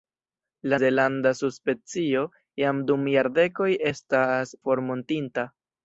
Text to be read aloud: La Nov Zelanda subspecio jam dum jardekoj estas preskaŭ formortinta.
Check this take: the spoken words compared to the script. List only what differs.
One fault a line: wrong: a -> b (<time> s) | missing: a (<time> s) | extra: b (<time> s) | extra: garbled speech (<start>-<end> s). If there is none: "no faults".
missing: Nov (0.8 s)
missing: preskaŭ (4.5 s)